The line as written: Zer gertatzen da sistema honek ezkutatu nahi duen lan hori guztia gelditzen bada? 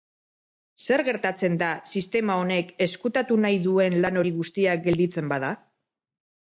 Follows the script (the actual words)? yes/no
yes